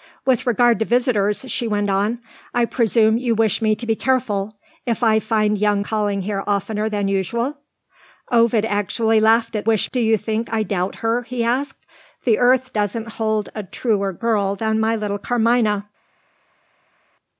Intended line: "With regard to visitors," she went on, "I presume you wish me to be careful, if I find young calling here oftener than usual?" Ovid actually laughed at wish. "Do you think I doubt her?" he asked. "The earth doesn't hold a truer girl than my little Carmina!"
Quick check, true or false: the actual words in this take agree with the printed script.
true